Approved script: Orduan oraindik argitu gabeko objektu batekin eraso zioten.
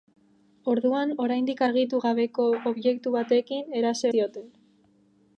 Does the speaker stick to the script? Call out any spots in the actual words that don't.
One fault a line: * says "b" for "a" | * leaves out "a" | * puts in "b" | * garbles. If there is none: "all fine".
all fine